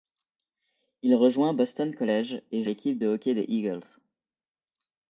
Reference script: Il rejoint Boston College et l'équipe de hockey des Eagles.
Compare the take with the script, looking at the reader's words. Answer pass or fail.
pass